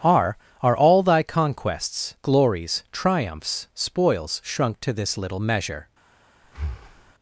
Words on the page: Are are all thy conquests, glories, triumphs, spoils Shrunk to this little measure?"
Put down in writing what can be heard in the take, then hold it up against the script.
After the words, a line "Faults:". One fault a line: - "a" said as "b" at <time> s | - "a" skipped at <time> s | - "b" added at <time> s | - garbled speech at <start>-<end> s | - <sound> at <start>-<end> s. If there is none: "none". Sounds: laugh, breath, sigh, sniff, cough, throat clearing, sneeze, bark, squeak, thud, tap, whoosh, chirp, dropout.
Are are all thy conquests, glories, triumphs, spoils Shrunk to this little measure?"
Faults:
- breath at 6.4-7.1 s